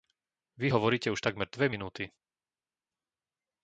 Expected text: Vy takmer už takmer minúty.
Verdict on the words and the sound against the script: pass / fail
fail